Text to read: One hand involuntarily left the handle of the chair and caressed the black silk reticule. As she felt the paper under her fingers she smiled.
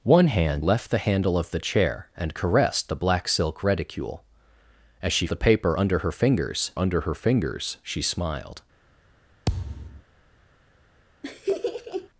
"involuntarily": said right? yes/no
no